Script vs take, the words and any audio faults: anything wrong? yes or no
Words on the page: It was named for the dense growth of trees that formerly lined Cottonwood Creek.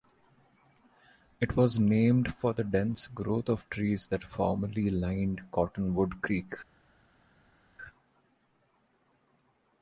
no